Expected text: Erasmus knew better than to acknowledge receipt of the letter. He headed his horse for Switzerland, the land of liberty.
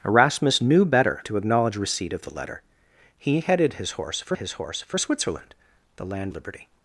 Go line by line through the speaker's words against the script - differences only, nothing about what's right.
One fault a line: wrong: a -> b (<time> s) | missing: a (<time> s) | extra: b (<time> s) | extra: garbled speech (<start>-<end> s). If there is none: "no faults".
missing: than (1.2 s)
extra: his horse for (4.4 s)
missing: of (6.3 s)